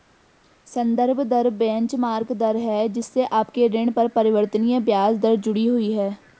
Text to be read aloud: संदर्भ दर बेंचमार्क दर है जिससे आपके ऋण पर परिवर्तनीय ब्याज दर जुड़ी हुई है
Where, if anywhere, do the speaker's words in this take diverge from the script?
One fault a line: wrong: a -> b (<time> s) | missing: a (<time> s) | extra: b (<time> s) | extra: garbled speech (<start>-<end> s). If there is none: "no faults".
no faults